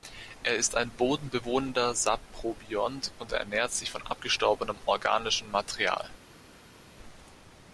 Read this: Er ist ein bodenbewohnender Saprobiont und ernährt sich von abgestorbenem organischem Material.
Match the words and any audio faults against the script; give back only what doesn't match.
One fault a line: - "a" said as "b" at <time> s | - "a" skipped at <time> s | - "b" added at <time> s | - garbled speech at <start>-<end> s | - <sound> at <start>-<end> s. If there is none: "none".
none